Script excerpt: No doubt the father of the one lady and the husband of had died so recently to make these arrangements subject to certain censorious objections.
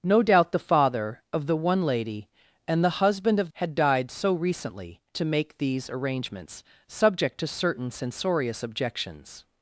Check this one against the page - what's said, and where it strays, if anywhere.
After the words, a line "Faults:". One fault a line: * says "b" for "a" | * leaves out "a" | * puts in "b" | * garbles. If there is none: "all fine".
No doubt the father of the one lady and the husband of had died so recently to make these arrangements subject to certain censorious objections.
Faults:
all fine